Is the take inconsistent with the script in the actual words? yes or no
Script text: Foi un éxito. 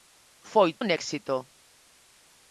no